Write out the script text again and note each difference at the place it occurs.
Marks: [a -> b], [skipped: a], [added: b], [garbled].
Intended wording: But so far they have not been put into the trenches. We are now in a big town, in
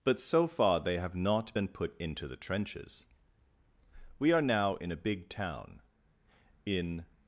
But so far they have not been put into the trenches. We are now in a big town, in